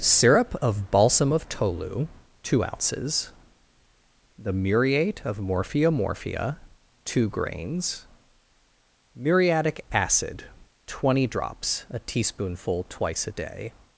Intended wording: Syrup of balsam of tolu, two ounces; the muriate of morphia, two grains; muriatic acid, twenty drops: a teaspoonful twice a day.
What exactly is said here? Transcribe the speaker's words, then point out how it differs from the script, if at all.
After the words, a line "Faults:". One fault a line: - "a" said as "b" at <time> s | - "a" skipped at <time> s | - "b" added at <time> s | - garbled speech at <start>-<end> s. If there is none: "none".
Syrup of balsam of tolu, two ounces; the muriate of morphia morphia, two grains; muriatic acid, twenty drops: a teaspoonful twice a day.
Faults:
- "morphia" added at 5.9 s